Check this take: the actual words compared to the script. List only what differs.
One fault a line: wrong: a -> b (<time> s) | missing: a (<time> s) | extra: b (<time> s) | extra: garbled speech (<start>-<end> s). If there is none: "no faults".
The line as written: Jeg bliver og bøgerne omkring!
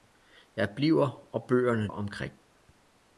no faults